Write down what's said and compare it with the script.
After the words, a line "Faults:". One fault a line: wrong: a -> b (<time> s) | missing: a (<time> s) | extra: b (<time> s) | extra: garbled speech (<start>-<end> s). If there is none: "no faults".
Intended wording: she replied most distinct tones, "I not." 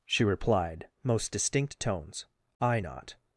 she replied most distinct tones, "I not."
Faults:
no faults